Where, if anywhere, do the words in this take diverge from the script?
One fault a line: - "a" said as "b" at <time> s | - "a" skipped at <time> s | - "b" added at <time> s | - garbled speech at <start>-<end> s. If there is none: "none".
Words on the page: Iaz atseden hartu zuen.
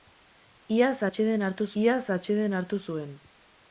- "iaz atseden hartu" added at 1.8 s